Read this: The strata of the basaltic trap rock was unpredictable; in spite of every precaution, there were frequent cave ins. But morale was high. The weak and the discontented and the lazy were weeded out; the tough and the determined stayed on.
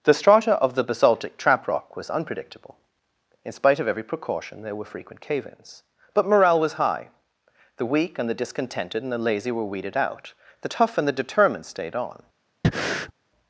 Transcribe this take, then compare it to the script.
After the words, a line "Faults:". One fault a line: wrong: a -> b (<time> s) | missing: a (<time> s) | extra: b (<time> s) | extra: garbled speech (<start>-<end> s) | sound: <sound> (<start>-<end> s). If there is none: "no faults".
The strata of the basaltic trap rock was unpredictable; in spite of every precaution, there were frequent cave ins. But morale was high. The weak and the discontented and the lazy were weeded out; the tough and the determined stayed on.
Faults:
sound: breath (12.6-13.1 s)